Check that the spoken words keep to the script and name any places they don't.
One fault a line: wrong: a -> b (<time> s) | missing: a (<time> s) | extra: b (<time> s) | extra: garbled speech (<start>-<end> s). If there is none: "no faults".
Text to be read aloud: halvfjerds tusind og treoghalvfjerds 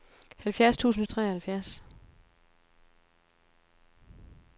no faults